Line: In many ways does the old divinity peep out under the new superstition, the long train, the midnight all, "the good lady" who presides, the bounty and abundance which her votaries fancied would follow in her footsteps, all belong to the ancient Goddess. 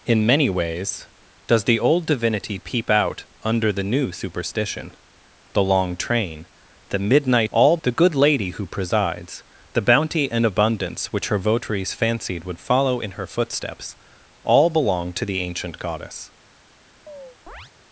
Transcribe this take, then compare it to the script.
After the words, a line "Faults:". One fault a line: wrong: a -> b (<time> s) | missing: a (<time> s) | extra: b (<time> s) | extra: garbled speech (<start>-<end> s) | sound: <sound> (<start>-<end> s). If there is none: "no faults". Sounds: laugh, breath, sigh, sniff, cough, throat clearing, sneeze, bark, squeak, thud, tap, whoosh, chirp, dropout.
In many ways does the old divinity peep out under the new superstition, the long train, the midnight all, "the good lady" who presides, the bounty and abundance which her votaries fancied would follow in her footsteps, all belong to the ancient Goddess.
Faults:
sound: chirp (17.1-17.7 s)